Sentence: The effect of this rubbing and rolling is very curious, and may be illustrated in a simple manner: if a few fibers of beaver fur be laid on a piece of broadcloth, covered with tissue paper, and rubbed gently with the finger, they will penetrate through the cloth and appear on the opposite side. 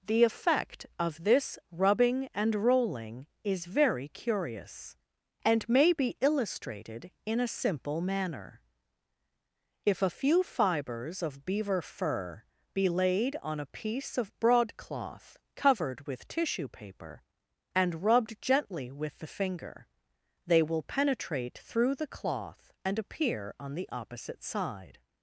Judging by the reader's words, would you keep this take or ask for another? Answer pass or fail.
pass